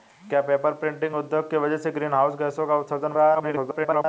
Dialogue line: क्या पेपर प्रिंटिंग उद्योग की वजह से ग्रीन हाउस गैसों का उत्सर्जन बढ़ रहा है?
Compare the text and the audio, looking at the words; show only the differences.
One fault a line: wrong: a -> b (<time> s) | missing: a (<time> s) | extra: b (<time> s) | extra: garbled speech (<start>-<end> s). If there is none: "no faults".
missing: बढ़ (3.1 s)
extra: garbled speech (3.3-4.1 s)